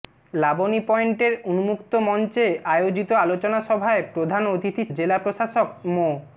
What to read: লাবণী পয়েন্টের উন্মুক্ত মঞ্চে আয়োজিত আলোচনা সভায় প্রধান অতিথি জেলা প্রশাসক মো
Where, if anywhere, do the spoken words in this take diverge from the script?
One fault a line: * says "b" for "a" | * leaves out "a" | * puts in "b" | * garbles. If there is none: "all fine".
all fine